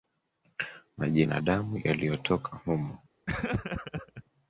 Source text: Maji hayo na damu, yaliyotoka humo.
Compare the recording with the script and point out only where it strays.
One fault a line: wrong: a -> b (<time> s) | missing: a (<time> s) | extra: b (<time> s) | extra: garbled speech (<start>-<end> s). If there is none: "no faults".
missing: hayo (1.2 s)